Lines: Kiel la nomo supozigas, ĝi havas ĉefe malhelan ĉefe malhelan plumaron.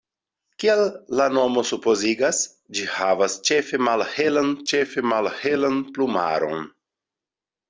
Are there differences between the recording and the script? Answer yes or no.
no